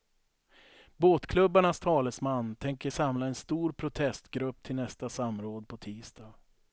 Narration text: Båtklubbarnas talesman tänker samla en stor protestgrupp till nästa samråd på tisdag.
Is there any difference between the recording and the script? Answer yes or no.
no